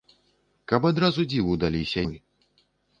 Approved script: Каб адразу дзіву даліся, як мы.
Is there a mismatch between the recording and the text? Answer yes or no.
yes